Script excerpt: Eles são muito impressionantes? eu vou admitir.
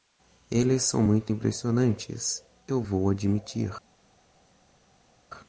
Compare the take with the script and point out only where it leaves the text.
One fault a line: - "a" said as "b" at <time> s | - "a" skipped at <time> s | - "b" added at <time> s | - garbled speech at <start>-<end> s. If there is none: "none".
none